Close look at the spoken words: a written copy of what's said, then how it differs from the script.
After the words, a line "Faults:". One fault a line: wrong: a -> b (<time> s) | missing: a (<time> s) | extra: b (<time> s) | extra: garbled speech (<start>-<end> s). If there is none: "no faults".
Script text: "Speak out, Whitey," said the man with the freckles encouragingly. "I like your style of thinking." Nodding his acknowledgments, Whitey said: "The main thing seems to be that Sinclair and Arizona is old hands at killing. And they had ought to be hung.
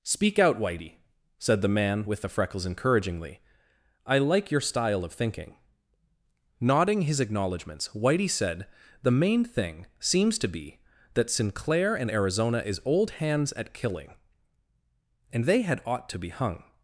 "Speak out, Whitey," said the man with the freckles encouragingly. "I like your style of thinking." Nodding his acknowledgments, Whitey said: "The main thing seems to be that Sinclair and Arizona is old hands at killing. And they had ought to be hung.
Faults:
no faults